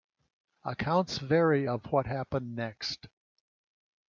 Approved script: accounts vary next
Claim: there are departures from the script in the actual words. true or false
true